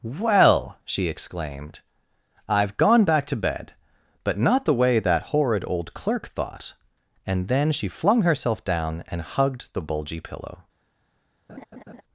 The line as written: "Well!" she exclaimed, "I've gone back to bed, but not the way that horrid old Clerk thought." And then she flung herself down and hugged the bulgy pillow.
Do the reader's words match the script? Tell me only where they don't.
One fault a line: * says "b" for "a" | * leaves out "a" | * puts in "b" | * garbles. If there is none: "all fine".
all fine